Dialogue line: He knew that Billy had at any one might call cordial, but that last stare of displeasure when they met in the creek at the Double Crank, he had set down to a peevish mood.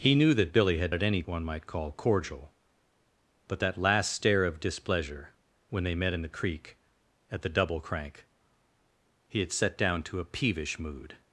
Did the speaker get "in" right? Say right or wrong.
right